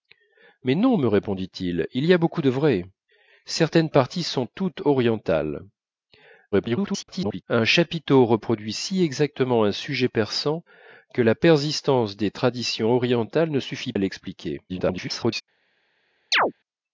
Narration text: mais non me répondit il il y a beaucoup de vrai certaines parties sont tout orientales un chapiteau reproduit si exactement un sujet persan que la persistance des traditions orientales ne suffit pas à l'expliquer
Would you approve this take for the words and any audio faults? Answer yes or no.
no